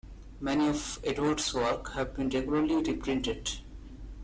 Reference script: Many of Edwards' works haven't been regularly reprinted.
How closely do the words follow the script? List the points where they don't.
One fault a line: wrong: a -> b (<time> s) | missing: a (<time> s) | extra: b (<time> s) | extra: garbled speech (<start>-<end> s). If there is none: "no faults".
wrong: haven't -> have (1.9 s)